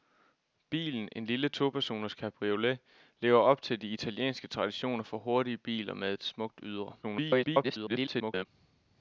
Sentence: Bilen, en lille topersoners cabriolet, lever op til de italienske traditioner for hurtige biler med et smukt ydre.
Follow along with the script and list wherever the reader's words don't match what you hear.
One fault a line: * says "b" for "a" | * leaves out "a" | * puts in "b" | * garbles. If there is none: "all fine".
* garbles